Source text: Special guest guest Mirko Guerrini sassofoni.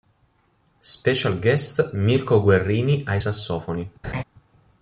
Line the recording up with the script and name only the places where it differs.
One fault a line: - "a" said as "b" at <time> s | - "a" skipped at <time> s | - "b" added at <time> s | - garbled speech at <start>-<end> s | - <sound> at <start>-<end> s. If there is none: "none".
- "guest" skipped at 1.9 s
- "ai" added at 3.0 s
- laugh at 4.0-4.2 s